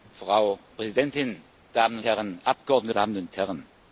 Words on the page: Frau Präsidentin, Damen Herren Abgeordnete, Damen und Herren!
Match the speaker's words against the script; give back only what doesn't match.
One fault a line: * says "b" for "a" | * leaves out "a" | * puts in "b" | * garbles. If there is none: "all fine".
all fine